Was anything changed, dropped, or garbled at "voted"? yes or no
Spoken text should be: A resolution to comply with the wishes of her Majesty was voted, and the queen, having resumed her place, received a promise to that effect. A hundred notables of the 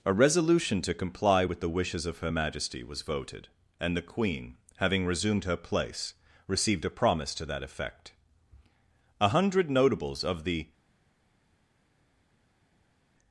no